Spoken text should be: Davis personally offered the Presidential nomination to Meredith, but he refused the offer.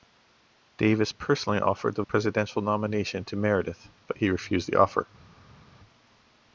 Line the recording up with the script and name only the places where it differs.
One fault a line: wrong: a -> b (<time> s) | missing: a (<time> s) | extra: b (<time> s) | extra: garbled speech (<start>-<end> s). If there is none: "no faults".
no faults